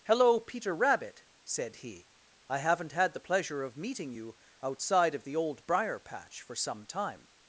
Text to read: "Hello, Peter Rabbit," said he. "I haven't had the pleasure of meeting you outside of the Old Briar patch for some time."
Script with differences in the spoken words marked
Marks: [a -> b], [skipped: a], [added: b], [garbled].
"Hello, Peter Rabbit," said he. "I haven't had the pleasure of meeting you outside of the Old Briar patch for some time."